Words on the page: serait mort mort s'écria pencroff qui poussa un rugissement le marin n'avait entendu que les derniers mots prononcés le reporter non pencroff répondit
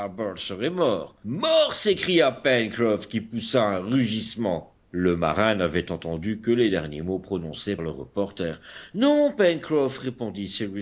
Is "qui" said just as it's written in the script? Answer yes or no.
yes